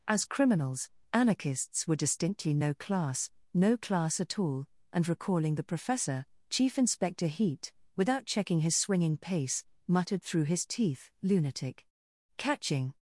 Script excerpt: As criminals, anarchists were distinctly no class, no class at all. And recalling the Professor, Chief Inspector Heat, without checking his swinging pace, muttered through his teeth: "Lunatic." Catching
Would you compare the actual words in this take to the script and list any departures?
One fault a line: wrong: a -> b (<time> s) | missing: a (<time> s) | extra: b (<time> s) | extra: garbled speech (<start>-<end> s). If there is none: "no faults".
no faults